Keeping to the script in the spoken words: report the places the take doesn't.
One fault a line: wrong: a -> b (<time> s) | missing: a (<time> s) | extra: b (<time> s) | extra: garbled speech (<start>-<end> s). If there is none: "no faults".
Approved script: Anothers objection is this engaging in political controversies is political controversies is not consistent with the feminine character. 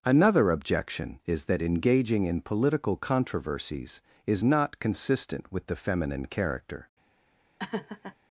wrong: Anothers -> Another (0.0 s)
wrong: this -> that (1.4 s)
missing: political controversies is (4.4 s)